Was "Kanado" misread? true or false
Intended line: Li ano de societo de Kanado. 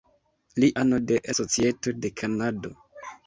false